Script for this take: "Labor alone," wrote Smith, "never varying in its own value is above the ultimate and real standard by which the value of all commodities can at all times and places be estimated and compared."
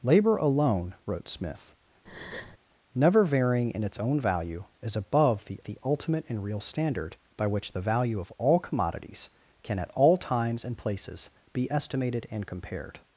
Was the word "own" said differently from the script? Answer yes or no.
no